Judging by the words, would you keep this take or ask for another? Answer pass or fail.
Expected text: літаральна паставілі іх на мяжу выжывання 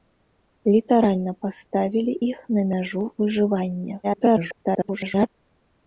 fail